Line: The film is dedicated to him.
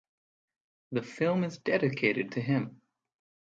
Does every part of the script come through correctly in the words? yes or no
yes